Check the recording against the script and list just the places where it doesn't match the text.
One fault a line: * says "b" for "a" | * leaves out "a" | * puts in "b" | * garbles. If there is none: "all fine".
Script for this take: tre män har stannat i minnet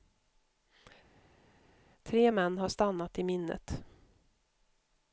all fine